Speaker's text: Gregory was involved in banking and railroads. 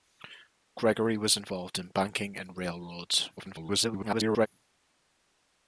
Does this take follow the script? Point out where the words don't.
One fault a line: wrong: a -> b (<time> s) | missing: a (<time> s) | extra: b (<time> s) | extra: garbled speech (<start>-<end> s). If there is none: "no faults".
extra: garbled speech (3.4-4.5 s)